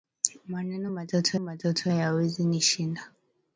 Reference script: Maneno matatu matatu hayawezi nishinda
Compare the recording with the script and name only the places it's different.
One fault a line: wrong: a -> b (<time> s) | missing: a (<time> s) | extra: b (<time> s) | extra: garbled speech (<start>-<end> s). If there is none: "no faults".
no faults